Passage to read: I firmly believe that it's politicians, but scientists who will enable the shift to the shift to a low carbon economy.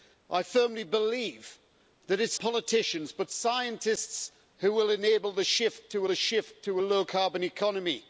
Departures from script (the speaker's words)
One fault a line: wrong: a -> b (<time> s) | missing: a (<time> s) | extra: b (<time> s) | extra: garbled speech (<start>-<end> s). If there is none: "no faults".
no faults